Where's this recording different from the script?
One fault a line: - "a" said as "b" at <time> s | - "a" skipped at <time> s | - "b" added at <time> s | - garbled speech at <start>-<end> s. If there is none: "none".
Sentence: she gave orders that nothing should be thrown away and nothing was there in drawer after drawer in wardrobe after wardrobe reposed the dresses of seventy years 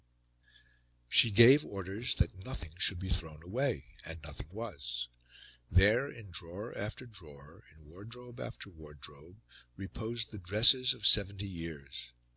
none